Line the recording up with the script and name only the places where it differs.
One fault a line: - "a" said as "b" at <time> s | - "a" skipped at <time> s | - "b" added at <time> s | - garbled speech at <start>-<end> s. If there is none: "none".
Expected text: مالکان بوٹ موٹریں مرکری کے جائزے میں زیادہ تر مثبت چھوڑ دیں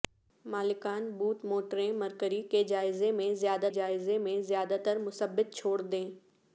- "جائزے میں زیادہ" added at 3.7 s